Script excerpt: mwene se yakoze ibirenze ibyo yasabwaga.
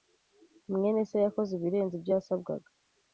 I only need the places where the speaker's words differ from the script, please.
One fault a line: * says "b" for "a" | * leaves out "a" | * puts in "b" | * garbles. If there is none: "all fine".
all fine